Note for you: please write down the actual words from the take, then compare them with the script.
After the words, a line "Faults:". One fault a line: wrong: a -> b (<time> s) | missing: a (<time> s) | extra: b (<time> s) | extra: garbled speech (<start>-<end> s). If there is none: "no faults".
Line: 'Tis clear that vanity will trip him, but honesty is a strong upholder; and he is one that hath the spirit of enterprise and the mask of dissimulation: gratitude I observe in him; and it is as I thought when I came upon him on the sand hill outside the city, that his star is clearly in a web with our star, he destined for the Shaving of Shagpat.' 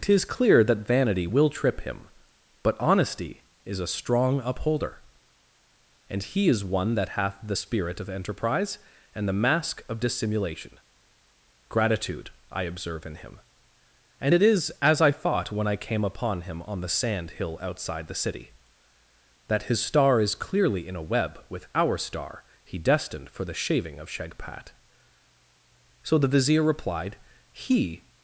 'Tis clear that vanity will trip him, but honesty is a strong upholder; and he is one that hath the spirit of enterprise and the mask of dissimulation: gratitude I observe in him; and it is as I thought when I came upon him on the sand hill outside the city, that his star is clearly in a web with our star, he destined for the Shaving of Shagpat.' So the Vizier replied, 'He
Faults:
extra: So the Vizier replied He (26.0 s)